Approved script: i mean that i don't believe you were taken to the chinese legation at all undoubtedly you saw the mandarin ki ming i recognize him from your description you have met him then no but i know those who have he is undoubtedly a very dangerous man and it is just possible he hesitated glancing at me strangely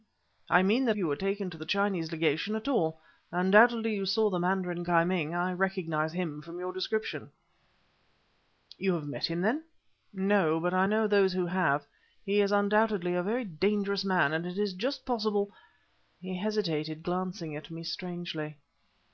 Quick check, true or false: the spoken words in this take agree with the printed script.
false